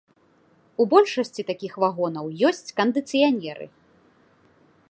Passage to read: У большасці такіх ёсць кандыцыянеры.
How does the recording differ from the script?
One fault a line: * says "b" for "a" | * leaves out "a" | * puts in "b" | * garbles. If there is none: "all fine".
* puts in "вагонаў"